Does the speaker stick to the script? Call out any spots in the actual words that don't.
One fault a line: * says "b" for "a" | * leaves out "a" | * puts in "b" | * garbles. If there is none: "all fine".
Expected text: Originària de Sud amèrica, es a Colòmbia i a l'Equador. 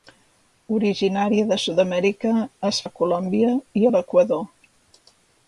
all fine